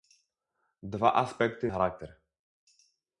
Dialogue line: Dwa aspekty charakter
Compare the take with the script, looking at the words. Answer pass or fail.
pass